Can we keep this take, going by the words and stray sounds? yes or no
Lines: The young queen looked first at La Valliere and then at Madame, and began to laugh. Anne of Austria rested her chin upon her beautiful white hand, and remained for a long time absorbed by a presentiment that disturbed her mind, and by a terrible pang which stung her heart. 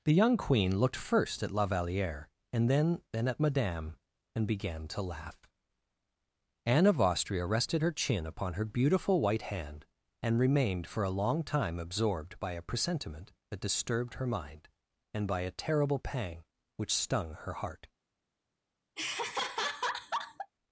no